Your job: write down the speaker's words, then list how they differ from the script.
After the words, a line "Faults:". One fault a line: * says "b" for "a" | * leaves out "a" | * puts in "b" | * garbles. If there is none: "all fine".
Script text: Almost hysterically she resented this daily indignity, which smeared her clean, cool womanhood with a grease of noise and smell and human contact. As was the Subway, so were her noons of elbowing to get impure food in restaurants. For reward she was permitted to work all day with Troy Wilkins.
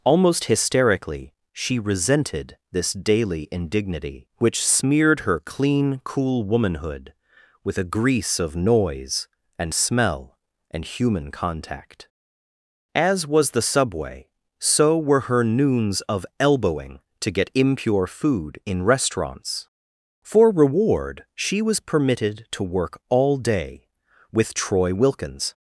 Almost hysterically she resented this daily indignity, which smeared her clean, cool womanhood with a grease of noise and smell and human contact. As was the Subway, so were her noons of elbowing to get impure food in restaurants. For reward she was permitted to work all day with Troy Wilkins.
Faults:
all fine